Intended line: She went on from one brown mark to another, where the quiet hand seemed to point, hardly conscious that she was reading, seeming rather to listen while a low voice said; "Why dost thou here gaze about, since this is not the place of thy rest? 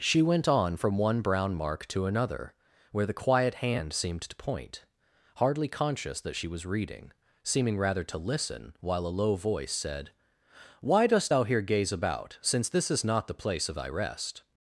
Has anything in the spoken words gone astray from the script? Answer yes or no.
no